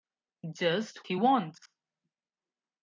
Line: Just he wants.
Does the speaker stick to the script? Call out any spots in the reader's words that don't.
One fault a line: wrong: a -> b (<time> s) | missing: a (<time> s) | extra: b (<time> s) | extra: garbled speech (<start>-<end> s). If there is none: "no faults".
no faults